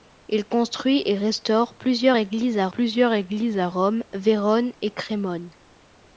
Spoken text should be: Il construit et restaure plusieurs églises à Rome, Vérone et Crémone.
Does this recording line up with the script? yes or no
no